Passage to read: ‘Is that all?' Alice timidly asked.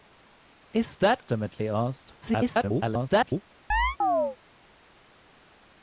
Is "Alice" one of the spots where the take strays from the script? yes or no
yes